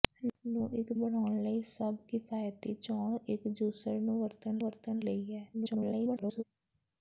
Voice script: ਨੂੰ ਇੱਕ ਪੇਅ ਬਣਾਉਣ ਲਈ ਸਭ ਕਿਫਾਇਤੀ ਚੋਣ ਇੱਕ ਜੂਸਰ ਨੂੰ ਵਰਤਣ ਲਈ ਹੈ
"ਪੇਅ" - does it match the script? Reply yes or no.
no